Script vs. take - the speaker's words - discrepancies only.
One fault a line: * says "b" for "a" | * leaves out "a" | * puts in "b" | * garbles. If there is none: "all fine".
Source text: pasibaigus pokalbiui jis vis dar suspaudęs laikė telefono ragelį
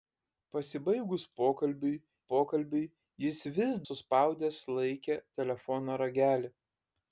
* puts in "pokalbiui"
* leaves out "dar"